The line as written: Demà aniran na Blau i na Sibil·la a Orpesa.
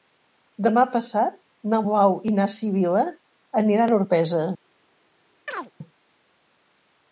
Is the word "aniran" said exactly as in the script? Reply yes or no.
no